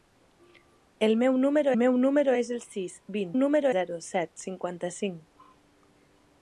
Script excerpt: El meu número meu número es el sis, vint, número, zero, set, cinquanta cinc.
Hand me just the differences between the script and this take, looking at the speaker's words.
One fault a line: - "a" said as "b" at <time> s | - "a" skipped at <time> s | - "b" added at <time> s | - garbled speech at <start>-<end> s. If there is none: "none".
none